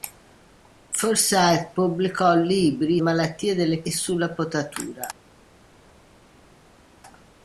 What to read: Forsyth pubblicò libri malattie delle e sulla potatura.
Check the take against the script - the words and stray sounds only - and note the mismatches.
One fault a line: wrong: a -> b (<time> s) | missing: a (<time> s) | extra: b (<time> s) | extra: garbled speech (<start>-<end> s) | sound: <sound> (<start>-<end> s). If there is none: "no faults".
no faults